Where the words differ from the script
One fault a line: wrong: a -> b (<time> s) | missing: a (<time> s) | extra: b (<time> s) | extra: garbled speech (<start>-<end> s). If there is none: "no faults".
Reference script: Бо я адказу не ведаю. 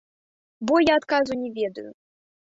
no faults